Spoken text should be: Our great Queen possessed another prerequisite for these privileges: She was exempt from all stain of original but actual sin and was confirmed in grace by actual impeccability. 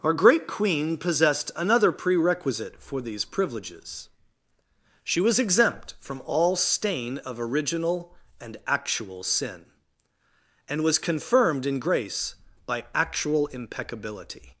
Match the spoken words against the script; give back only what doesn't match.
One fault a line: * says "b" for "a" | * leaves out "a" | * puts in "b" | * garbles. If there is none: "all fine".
* says "and" for "but"